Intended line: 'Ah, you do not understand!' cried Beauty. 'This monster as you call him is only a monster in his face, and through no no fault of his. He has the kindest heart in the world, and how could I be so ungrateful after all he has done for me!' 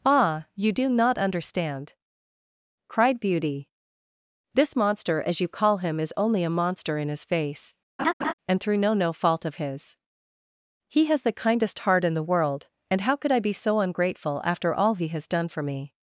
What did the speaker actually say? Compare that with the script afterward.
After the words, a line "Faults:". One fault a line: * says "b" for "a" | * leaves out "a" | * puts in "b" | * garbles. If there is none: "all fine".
'Ah, you do not understand!' cried Beauty. 'This monster as you call him is only a monster in his face, and through no no fault of his. He has the kindest heart in the world, and how could I be so ungrateful after all he has done for me!'
Faults:
all fine